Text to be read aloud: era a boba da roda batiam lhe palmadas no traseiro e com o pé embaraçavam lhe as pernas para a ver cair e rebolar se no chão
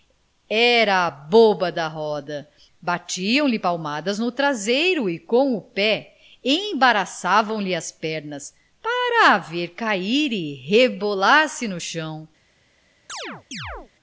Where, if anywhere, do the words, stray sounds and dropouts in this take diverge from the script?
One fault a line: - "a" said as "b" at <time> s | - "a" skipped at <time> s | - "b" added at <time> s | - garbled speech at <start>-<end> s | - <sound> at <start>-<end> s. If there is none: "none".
- chirp at 13.1-13.9 s